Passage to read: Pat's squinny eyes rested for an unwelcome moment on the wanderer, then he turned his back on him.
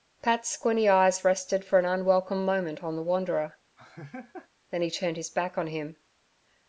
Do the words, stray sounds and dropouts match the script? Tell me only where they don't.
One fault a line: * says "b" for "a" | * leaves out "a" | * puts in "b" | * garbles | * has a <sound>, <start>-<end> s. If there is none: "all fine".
* has a laugh, 3.8-4.5 s